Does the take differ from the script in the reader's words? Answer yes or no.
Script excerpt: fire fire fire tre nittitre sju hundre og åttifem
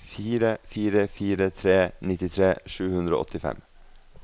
no